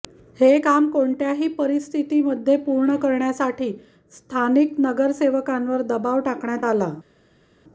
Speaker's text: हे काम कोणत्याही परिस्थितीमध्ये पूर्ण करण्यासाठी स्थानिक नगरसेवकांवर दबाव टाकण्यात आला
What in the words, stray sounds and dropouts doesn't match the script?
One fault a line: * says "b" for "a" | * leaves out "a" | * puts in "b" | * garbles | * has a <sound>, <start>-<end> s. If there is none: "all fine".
all fine